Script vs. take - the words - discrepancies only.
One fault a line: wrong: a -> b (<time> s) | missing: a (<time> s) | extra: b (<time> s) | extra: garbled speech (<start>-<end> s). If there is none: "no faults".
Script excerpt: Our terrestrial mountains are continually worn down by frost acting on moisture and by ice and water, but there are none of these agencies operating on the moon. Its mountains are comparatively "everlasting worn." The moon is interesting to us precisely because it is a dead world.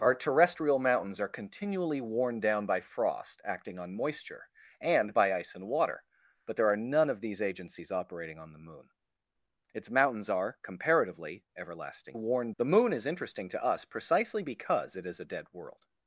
no faults